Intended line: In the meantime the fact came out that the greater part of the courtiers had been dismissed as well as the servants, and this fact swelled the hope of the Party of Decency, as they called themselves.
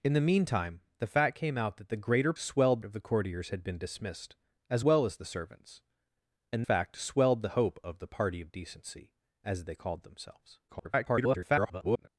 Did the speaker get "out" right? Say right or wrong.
right